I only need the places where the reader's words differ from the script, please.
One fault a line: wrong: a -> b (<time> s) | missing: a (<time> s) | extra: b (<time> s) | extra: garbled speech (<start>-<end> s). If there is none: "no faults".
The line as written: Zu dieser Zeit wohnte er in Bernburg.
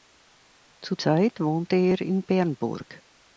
missing: dieser (0.9 s)